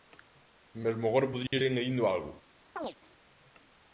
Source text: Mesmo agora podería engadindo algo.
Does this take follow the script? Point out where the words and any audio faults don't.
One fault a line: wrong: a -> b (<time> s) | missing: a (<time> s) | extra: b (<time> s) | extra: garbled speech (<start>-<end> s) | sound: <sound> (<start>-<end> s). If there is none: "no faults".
sound: dropout (1.5-1.5 s)
sound: chirp (2.8-3.0 s)